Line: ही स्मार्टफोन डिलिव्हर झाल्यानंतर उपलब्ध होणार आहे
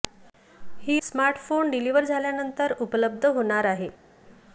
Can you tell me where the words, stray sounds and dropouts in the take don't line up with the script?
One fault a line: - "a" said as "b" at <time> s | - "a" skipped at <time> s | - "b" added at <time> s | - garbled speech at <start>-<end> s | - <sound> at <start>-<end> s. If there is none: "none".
none